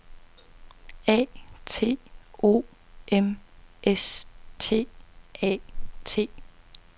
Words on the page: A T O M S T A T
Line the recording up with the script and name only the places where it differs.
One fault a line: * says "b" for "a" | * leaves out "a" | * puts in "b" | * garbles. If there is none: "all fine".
all fine